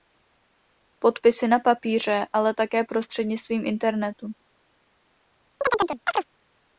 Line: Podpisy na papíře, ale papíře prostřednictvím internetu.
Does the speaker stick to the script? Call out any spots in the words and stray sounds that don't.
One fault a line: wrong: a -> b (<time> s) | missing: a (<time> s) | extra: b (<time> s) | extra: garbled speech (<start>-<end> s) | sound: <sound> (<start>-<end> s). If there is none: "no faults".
wrong: papíře -> také (2.5 s)
sound: chirp (5.6-6.3 s)